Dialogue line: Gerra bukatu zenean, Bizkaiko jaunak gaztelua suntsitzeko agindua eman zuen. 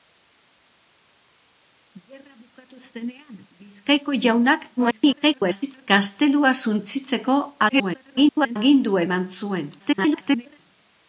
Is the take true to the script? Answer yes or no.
no